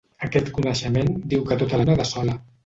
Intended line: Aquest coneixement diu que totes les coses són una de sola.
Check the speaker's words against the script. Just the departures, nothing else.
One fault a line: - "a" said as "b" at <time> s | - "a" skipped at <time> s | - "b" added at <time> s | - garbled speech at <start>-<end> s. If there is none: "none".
- "les coses són" skipped at 1.8 s